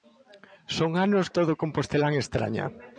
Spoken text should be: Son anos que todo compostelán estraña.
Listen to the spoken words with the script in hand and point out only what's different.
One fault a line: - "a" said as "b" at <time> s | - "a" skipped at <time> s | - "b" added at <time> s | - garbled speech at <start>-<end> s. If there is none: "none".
- "que" skipped at 1.3 s